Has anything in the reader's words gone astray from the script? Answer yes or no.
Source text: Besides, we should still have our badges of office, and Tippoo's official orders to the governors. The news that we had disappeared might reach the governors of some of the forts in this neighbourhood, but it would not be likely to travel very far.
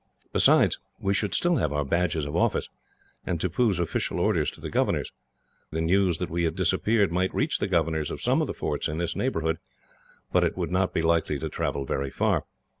no